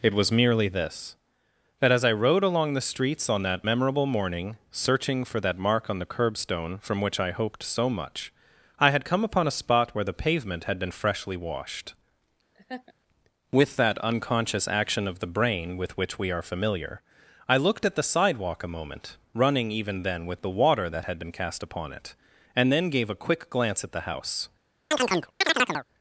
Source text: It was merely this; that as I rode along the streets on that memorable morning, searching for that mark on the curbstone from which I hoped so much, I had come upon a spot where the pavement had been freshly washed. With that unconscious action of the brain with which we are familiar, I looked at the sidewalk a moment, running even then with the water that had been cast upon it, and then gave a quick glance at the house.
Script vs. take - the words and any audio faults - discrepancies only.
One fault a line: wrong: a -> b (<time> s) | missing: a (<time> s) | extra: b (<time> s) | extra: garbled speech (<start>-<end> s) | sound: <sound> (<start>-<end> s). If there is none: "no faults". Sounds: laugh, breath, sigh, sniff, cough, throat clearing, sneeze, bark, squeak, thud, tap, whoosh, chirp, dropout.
sound: laugh (12.5-12.9 s)
sound: chirp (24.9-25.9 s)